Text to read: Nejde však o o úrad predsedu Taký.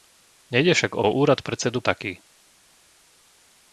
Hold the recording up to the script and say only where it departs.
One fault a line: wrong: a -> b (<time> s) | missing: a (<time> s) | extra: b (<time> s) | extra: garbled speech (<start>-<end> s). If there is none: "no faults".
no faults